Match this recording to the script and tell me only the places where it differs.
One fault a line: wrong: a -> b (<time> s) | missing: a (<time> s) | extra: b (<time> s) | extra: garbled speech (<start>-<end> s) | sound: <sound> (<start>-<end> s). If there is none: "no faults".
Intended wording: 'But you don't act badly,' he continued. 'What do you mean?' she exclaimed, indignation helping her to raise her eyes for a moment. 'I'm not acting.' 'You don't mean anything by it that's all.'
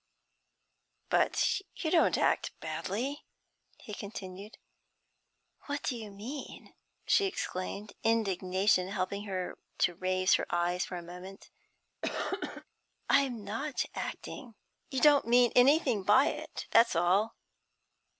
sound: cough (12.0-12.6 s)